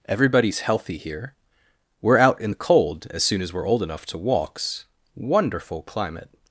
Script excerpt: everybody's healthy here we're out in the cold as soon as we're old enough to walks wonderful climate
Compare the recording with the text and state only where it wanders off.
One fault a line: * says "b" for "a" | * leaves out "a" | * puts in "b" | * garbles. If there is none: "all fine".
all fine